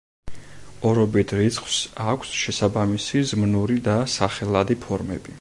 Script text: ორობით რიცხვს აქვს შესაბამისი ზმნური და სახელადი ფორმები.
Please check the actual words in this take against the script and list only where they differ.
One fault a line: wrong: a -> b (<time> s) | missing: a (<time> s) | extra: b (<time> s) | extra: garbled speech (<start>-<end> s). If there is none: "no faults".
no faults